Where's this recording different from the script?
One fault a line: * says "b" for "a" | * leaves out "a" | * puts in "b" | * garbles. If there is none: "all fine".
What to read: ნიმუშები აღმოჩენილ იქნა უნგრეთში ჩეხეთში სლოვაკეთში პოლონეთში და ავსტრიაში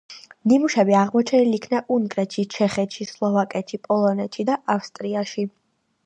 all fine